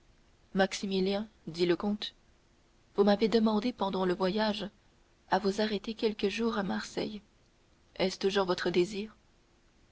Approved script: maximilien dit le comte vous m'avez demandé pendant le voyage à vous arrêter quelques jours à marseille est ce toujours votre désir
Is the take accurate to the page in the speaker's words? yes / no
yes